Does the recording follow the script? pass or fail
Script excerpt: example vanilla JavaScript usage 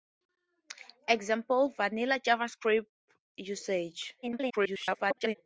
fail